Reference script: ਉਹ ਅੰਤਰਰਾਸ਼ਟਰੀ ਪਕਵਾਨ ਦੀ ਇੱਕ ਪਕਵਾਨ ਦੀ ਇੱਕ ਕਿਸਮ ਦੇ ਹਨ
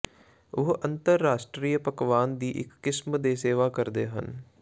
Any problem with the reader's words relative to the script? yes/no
yes